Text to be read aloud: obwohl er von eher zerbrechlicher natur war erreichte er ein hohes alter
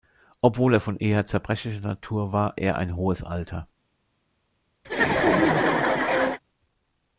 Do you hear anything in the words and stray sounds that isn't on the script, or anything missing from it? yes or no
yes